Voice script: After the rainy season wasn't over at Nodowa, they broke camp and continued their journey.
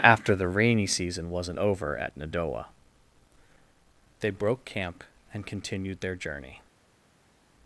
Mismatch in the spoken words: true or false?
false